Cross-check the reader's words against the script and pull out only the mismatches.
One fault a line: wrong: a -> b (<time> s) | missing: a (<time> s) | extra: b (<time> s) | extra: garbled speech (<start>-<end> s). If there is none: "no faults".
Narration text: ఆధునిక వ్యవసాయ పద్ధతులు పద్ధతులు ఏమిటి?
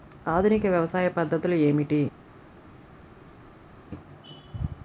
missing: పద్ధతులు (1.6 s)